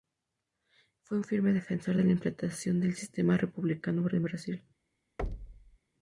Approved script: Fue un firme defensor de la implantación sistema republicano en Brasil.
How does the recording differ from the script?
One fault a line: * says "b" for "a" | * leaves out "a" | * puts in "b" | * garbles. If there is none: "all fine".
* puts in "del"